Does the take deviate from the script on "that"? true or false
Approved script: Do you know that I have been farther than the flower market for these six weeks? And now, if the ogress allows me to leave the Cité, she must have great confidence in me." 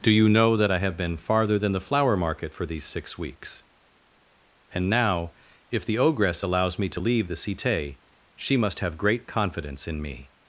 false